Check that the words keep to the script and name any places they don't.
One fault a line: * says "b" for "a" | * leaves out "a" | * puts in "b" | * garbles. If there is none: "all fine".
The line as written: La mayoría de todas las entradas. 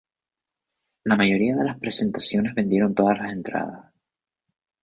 * puts in "las presentaciones vendieron"